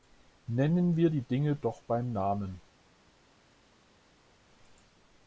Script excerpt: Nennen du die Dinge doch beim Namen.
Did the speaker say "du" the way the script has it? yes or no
no